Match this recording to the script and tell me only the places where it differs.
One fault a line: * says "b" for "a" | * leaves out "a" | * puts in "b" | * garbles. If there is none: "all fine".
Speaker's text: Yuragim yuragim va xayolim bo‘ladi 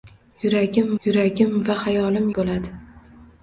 all fine